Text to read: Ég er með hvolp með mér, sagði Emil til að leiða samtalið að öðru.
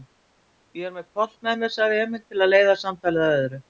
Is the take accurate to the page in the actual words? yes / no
yes